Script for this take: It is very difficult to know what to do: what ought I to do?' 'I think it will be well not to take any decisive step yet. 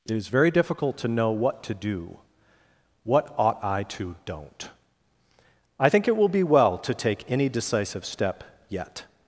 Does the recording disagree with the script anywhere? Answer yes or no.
yes